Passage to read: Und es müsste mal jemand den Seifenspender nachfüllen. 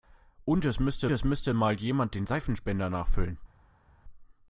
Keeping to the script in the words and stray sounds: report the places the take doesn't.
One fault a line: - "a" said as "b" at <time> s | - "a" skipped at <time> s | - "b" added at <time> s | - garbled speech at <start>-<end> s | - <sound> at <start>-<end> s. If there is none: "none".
- "es müsste" added at 1.1 s